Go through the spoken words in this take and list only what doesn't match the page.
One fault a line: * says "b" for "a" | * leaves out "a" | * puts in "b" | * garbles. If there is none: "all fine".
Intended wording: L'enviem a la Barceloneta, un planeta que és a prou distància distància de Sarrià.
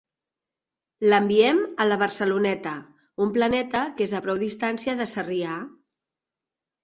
* leaves out "distància"